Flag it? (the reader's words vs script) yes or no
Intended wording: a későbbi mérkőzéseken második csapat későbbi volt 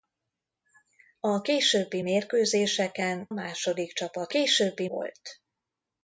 no